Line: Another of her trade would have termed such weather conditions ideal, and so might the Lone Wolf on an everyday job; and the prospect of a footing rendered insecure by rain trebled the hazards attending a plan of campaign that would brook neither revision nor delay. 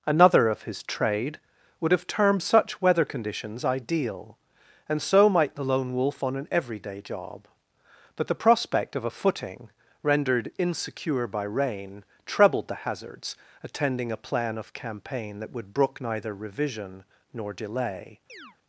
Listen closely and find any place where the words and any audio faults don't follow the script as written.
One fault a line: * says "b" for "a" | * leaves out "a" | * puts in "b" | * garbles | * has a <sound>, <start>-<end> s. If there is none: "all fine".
* says "his" for "her"
* says "but" for "and"
* has a chirp, 18.3-18.6 s